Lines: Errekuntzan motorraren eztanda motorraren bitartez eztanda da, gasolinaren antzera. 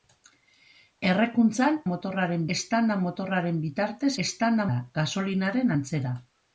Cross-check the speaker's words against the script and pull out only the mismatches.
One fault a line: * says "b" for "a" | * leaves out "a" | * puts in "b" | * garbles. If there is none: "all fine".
all fine